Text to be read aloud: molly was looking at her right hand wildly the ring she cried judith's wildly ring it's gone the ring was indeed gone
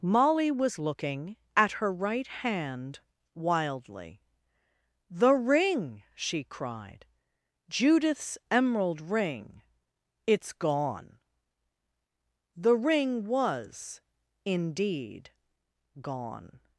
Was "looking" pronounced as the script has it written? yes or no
yes